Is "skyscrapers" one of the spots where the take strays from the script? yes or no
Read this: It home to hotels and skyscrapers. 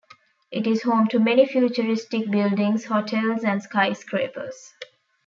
no